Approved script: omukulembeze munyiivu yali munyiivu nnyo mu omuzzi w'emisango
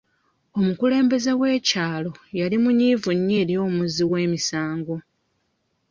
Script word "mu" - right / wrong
wrong